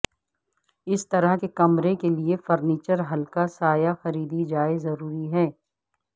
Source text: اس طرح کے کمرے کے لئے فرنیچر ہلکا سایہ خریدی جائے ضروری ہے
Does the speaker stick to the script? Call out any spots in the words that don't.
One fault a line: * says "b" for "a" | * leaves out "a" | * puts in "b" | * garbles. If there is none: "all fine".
all fine